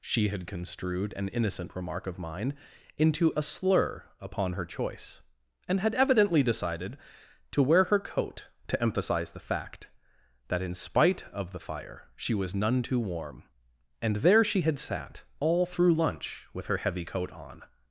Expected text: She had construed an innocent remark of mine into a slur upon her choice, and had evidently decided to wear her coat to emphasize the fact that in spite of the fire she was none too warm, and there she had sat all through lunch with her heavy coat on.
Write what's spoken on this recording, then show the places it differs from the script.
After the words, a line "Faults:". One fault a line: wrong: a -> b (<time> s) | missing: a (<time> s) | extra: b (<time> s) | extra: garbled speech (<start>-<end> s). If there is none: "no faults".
She had construed an innocent remark of mine into a slur upon her choice, and had evidently decided to wear her coat to emphasize the fact that in spite of the fire she was none too warm, and there she had sat all through lunch with her heavy coat on.
Faults:
no faults